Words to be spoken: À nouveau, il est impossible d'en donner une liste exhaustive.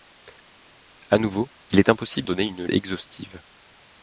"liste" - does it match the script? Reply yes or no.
no